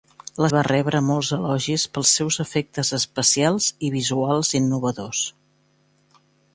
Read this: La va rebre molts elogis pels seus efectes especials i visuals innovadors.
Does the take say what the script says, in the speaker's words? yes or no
yes